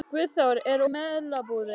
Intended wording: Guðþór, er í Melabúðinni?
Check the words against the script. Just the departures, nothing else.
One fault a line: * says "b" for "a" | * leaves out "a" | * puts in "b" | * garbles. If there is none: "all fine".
all fine